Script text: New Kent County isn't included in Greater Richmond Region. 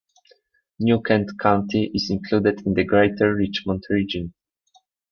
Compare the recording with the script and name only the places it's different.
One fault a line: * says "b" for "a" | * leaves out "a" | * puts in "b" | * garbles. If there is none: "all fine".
* says "is" for "isn't"
* puts in "the"